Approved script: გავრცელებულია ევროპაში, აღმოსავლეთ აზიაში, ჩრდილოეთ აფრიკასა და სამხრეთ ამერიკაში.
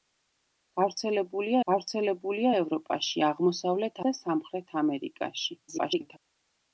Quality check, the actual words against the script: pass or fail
fail